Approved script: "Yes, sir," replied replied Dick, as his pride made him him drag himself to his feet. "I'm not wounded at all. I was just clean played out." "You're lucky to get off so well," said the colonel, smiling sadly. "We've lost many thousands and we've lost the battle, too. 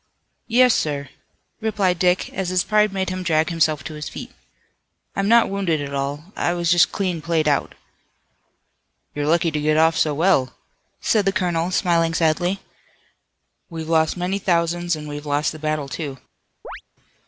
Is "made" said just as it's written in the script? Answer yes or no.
yes